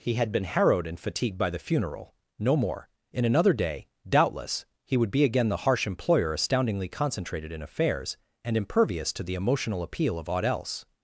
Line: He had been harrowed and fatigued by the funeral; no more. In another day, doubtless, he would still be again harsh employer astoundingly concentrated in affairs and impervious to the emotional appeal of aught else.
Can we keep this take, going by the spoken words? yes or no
no